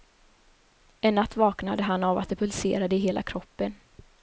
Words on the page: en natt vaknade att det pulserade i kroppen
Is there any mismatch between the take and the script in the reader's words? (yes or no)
yes